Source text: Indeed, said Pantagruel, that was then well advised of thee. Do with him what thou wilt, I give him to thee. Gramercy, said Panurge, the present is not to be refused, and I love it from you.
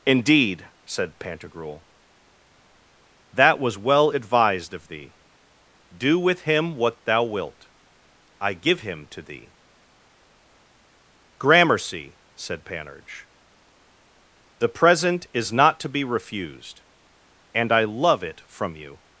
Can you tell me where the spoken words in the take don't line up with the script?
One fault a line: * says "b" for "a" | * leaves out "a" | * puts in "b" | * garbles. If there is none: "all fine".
* leaves out "then"